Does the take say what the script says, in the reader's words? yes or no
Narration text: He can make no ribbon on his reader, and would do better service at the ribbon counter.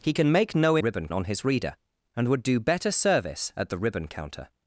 yes